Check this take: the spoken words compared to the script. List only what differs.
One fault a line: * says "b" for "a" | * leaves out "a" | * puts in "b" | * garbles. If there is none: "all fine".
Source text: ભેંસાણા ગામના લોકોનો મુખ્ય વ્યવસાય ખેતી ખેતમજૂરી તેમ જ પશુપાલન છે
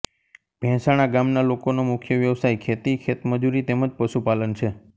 all fine